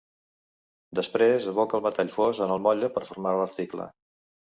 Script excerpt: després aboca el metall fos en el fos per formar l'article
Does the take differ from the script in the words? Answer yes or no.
yes